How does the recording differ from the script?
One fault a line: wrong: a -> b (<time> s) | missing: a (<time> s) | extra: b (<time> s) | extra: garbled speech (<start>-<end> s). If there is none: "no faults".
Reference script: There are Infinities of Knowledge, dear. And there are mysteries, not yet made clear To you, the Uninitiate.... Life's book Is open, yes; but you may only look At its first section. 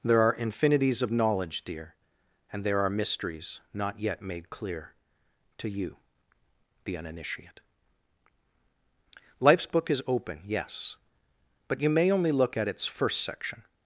no faults